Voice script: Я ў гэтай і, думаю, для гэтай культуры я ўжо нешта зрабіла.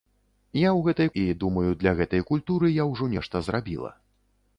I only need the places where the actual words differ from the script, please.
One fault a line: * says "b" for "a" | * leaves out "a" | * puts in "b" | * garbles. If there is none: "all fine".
all fine